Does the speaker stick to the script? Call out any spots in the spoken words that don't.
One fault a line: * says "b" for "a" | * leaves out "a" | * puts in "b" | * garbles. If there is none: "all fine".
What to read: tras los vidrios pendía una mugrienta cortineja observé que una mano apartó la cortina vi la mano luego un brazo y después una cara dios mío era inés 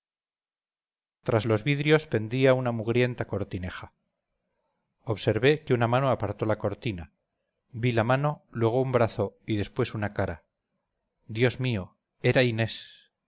all fine